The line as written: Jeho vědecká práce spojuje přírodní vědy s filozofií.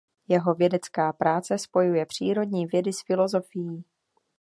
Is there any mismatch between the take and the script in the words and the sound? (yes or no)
no